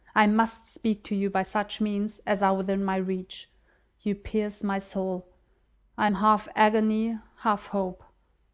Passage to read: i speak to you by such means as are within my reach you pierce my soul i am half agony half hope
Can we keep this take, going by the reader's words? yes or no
no